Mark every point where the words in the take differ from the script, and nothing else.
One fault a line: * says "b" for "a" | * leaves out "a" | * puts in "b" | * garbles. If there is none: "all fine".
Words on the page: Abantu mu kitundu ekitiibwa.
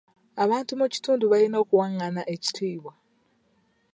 * puts in "balina okuwangana"